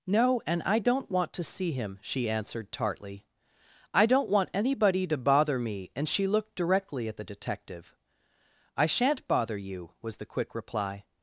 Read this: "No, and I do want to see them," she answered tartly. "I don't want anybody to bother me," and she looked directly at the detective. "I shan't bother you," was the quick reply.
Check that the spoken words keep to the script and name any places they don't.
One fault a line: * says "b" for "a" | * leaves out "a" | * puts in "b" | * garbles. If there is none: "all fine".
* says "don't" for "do"
* says "him" for "them"